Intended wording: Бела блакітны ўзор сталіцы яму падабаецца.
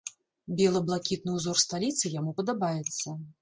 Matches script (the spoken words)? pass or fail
pass